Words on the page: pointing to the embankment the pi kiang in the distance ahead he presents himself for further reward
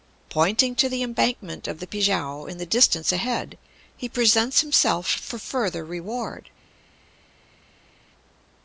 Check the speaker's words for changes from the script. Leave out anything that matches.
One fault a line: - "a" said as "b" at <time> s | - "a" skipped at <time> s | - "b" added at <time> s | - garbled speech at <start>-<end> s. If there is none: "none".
- "of" added at 1.7 s